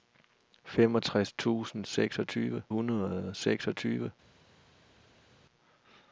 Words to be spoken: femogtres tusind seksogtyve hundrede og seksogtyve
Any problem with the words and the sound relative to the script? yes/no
no